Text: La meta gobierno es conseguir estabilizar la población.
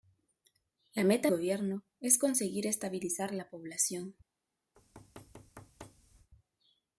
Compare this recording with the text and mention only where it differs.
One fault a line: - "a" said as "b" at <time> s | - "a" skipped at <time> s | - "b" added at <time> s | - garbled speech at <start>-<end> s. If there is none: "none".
none